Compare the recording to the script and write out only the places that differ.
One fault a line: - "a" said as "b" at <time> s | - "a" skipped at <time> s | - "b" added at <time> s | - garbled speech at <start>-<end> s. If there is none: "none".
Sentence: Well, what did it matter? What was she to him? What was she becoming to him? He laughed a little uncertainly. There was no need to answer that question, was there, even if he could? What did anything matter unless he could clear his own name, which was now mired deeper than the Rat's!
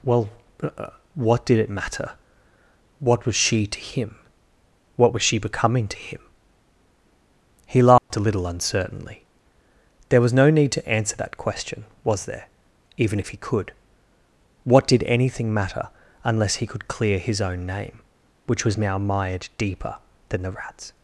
none